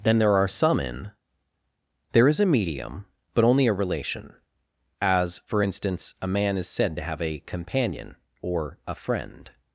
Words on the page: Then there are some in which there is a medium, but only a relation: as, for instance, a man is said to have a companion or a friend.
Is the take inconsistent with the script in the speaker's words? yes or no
yes